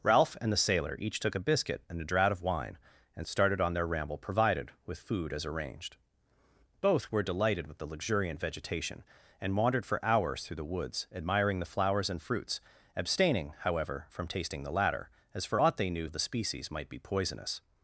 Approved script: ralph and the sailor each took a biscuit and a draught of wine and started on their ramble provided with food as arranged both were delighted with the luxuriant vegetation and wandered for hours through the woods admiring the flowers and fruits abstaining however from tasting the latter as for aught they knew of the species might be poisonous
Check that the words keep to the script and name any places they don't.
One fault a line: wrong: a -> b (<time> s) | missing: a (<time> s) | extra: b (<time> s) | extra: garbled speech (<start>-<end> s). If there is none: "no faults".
no faults